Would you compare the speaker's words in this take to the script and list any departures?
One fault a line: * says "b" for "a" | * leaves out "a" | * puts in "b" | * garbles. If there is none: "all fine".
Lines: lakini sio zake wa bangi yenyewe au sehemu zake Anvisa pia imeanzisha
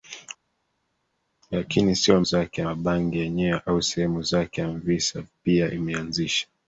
all fine